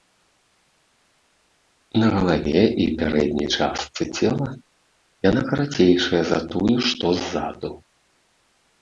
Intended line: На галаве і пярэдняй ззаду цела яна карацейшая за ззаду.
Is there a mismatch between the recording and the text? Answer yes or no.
yes